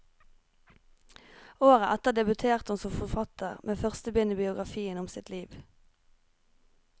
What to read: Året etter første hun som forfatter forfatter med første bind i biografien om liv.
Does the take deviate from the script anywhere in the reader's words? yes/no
yes